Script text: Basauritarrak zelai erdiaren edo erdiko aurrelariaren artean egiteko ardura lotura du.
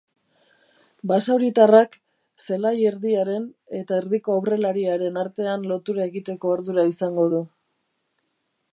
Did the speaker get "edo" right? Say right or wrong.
wrong